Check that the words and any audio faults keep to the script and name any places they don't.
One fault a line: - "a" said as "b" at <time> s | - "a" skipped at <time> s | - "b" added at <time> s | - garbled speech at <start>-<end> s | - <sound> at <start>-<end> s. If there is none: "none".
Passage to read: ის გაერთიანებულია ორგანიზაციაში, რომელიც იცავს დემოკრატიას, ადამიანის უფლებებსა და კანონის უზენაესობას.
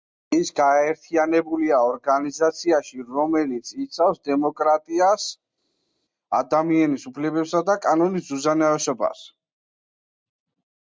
none